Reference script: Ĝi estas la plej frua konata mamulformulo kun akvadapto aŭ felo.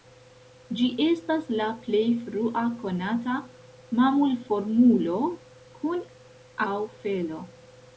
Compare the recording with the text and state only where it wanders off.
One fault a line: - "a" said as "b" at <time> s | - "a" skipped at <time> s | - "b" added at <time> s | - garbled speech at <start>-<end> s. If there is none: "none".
- "akvadapto" skipped at 6.1 s